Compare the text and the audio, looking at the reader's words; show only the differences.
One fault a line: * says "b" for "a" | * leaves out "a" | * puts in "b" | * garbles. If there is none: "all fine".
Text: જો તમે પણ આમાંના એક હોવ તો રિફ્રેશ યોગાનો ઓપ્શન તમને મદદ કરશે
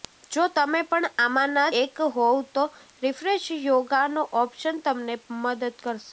all fine